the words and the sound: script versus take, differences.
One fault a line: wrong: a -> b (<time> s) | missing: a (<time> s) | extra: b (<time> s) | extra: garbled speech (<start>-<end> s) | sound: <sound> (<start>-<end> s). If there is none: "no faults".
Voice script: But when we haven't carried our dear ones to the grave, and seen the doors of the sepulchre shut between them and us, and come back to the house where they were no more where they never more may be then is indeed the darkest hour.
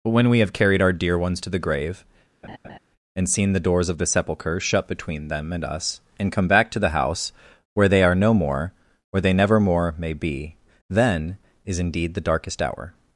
wrong: haven't -> have (0.4 s)
sound: laugh (2.4-2.8 s)
wrong: were -> are (8.0 s)